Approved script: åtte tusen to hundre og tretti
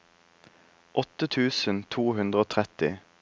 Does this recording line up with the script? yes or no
yes